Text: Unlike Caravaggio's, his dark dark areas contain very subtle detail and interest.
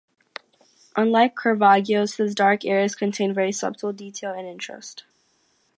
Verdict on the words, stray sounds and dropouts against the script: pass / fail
fail